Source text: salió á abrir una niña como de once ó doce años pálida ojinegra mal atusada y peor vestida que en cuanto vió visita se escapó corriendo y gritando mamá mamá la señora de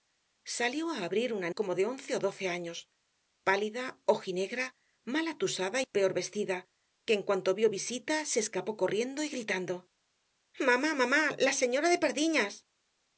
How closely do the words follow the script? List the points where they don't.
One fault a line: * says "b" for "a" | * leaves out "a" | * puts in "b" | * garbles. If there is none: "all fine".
* leaves out "niña"